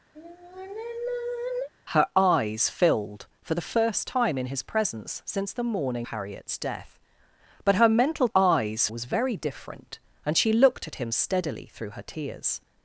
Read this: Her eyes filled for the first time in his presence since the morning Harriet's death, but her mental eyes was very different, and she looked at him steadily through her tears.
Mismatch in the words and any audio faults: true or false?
true